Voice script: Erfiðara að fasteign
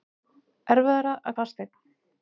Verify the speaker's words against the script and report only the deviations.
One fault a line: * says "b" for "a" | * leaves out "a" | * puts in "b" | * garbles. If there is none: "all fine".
all fine